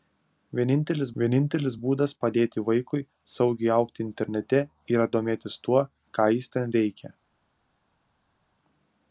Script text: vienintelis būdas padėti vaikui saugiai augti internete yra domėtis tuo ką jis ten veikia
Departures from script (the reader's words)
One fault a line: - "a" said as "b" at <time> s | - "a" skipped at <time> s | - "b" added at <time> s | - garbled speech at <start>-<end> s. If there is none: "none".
- "vienintelis" added at 1.2 s